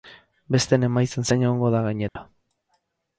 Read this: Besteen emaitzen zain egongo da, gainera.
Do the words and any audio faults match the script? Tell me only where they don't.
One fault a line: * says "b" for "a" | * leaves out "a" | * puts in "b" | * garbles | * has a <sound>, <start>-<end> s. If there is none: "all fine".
* has a dropout, 2.1-2.2 s